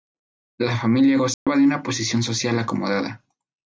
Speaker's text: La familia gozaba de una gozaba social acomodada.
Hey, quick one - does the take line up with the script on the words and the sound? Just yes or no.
no